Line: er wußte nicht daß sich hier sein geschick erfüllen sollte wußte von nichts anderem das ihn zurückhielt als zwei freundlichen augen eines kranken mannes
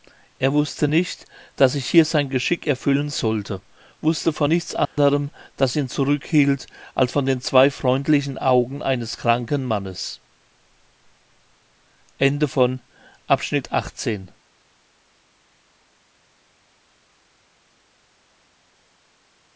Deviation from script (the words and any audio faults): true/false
true